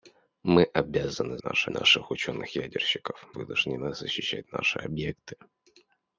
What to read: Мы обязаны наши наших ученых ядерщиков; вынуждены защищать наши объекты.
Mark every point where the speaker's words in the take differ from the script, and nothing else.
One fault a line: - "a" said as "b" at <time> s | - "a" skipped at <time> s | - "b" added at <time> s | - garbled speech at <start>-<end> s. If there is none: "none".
none